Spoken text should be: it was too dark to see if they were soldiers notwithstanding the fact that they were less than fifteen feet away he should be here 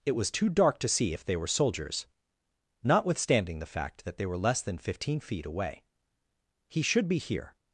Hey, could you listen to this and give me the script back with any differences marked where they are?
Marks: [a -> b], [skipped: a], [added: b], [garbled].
it was too dark to see if they were soldiers notwithstanding the fact that they were less than fifteen feet away he should be here